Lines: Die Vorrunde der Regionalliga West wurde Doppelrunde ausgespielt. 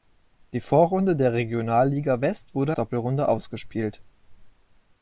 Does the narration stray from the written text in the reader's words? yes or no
no